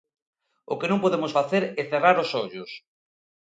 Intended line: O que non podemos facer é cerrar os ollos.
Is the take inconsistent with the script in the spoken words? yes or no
no